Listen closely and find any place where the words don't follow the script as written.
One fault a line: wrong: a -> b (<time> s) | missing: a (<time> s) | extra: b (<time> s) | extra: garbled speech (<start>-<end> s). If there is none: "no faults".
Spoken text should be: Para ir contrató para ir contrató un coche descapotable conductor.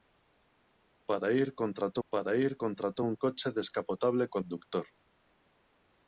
no faults